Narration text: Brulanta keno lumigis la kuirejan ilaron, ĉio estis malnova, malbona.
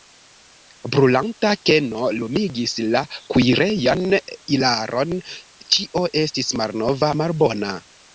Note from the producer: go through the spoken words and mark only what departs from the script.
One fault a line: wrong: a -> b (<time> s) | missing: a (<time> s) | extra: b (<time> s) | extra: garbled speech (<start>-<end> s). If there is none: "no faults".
no faults